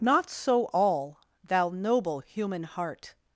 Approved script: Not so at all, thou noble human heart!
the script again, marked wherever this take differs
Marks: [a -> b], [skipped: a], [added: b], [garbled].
Not so [skipped: at] all, thou noble human heart!